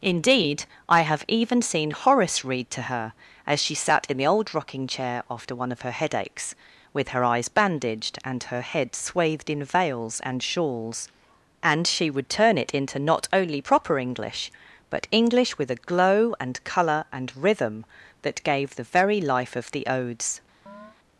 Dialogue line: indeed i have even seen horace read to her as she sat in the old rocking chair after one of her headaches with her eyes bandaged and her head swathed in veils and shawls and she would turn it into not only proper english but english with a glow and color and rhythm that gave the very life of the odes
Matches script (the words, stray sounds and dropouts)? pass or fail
fail